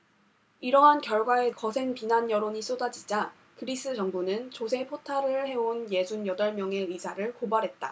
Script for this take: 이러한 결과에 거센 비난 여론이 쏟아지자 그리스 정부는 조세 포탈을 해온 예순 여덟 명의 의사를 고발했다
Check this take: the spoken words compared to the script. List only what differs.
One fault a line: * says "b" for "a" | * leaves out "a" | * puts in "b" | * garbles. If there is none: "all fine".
all fine